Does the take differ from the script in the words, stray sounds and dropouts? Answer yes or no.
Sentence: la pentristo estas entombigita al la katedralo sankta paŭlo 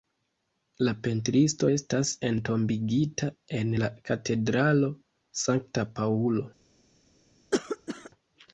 yes